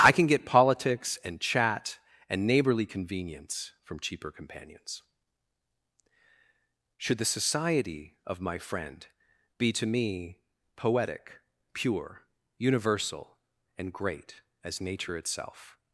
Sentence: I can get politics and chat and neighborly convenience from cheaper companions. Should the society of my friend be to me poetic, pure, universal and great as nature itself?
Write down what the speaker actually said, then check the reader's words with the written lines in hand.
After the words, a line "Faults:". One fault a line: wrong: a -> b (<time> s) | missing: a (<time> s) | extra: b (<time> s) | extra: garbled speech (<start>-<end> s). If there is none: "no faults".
I can get politics and chat and neighborly convenience from cheaper companions. Should the society of my friend be to me poetic, pure, universal and great as nature itself?
Faults:
no faults